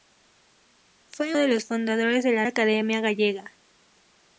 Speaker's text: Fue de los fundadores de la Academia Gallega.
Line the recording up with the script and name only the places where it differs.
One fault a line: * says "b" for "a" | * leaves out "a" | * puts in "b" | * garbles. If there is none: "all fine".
all fine